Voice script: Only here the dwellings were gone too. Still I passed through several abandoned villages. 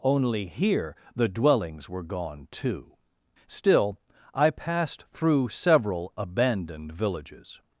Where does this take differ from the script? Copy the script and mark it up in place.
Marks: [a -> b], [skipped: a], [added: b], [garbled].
Only here the dwellings were gone too. Still I passed through several abandoned villages.